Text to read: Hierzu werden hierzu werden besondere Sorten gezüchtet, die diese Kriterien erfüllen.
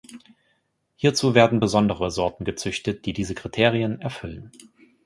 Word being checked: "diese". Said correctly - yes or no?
yes